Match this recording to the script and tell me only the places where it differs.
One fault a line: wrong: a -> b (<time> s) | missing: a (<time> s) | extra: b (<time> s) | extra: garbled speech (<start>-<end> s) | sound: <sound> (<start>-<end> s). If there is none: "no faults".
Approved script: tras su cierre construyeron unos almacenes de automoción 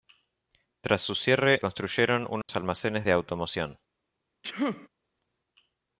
sound: dropout (2.4-2.5 s)
sound: sneeze (4.4-4.9 s)